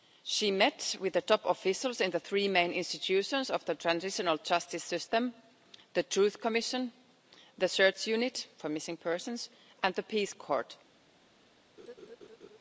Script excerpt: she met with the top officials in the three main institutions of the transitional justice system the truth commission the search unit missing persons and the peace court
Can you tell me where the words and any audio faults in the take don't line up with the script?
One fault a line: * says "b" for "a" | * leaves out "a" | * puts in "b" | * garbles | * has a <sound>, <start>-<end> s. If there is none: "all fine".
* puts in "for"
* has a laugh, 11.8-12.6 s